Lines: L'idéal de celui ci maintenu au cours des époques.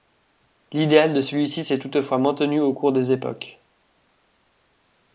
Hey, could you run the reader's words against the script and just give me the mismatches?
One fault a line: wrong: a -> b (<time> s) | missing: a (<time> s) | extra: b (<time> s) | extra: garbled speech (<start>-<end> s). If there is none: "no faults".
extra: s'est toutefois (1.6 s)